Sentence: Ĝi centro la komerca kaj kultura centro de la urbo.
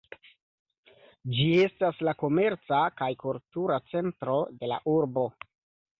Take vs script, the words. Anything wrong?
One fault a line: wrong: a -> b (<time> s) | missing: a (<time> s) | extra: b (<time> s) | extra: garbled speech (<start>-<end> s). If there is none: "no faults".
wrong: centro -> estas (1.6 s)